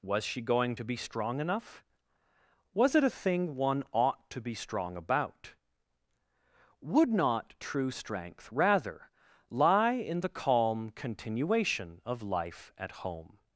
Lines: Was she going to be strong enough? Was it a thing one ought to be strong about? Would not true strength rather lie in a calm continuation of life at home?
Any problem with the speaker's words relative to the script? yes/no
yes